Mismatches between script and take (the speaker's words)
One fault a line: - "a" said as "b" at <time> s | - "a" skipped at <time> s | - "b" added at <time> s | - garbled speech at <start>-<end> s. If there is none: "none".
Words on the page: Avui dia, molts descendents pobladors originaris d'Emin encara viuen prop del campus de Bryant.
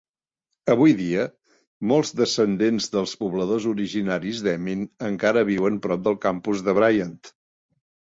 - "dels" added at 3.0 s